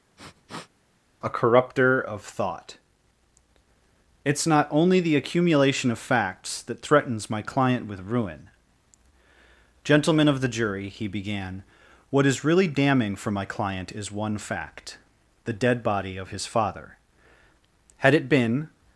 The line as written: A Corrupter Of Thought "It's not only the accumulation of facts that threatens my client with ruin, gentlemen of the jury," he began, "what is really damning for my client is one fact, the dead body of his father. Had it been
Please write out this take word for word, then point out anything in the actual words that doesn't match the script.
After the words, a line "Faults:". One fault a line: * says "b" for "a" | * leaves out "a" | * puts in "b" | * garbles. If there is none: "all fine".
A Corrupter Of Thought "It's not only the accumulation of facts that threatens my client with ruin, gentlemen of the jury," he began, "what is really damning for my client is one fact, the dead body of his father. Had it been
Faults:
all fine